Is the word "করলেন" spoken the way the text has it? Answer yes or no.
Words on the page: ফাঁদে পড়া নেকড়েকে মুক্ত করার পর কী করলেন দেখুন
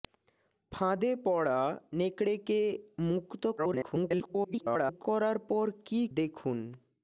no